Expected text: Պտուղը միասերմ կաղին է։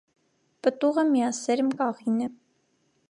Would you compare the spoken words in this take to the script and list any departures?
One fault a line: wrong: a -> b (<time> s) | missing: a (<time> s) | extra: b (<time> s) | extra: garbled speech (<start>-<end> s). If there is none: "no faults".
no faults